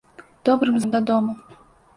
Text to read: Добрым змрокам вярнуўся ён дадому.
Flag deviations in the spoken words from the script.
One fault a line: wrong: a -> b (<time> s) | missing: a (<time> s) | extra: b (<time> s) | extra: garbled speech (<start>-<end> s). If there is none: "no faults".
missing: змрокам вярнуўся (0.8 s)